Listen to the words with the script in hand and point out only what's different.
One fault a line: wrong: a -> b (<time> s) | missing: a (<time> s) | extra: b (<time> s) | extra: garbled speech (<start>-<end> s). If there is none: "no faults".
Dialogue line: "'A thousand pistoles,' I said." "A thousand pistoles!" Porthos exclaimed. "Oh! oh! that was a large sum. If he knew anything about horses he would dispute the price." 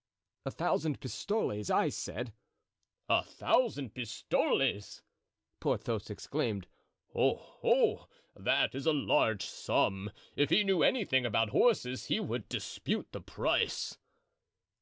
wrong: was -> is (8.7 s)